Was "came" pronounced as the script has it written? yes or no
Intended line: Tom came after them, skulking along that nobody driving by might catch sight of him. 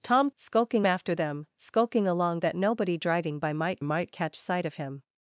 no